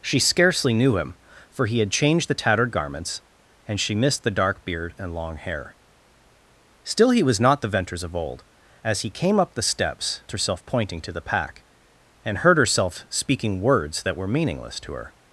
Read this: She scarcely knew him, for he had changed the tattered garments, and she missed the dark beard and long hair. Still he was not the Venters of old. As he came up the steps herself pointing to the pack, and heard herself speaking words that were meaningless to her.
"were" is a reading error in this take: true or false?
false